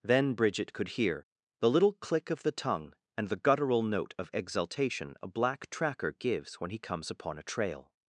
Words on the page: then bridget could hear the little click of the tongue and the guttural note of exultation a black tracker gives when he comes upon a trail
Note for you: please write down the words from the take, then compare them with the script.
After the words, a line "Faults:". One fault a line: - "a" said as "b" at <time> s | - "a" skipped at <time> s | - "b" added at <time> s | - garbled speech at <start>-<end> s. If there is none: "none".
then bridget could hear the little click of the tongue and the guttural note of exultation a black tracker gives when he comes upon a trail
Faults:
none